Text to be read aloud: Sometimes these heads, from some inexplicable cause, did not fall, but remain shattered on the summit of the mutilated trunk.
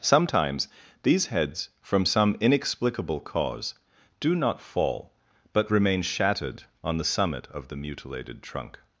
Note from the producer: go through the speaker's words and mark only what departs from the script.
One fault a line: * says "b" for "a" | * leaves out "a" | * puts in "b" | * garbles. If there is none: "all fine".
* says "do" for "did"